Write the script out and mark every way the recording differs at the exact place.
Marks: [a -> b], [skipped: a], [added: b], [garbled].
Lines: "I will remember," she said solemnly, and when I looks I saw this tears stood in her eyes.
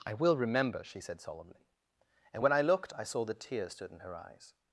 "I will remember," she said solemnly, and when I [looks -> looked] I saw [this -> that] tears stood in her eyes.